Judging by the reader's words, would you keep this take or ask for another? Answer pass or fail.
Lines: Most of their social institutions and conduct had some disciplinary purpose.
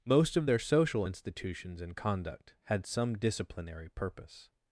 pass